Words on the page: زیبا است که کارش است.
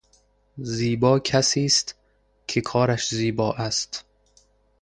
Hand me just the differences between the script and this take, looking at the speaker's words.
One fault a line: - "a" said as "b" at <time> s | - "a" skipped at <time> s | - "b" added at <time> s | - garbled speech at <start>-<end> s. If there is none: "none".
- "کسی" added at 1.2 s
- "زیبا" added at 3.1 s